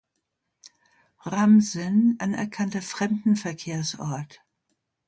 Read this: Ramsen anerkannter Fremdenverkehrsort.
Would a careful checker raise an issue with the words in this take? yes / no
no